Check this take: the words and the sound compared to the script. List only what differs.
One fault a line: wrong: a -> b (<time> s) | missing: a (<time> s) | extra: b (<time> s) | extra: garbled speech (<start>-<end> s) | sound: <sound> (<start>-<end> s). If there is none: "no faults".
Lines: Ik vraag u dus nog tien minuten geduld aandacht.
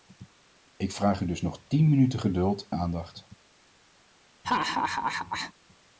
sound: laugh (4.4-5.5 s)